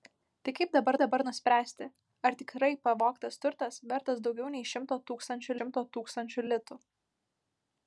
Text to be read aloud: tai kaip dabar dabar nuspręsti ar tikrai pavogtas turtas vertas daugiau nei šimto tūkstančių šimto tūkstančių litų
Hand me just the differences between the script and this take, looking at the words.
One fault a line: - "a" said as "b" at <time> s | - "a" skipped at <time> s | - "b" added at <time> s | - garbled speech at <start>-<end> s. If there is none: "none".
none